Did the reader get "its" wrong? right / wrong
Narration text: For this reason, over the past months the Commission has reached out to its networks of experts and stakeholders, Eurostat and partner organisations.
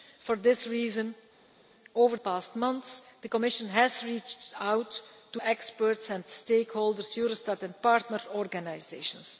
wrong